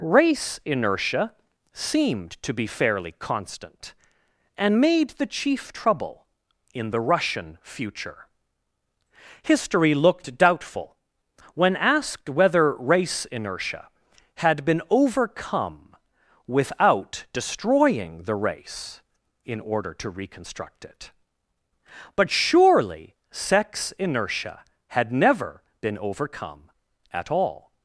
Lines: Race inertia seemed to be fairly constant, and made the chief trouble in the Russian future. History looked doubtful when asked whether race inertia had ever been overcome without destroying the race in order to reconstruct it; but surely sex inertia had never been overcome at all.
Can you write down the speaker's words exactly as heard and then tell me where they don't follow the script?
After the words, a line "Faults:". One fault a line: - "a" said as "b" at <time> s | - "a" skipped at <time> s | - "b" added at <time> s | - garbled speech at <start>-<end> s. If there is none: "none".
Race inertia seemed to be fairly constant, and made the chief trouble in the Russian future. History looked doubtful when asked whether race inertia had been overcome without destroying the race in order to reconstruct it; but surely sex inertia had never been overcome at all.
Faults:
- "ever" skipped at 14.6 s